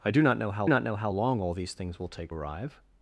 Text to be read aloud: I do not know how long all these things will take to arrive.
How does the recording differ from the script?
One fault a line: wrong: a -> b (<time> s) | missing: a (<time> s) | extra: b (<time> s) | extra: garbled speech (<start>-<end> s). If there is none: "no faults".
extra: not know how (0.7 s)
missing: to (2.3 s)